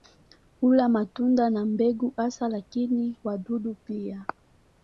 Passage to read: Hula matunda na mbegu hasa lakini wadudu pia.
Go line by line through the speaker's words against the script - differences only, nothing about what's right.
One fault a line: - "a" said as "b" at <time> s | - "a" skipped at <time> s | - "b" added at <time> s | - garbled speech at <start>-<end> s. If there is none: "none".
none